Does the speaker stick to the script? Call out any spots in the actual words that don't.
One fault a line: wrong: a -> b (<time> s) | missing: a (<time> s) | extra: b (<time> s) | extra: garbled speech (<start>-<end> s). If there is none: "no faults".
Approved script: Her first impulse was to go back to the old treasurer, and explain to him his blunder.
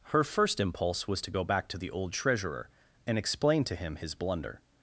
no faults